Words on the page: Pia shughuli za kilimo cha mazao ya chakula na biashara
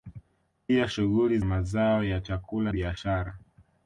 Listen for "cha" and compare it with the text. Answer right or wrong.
wrong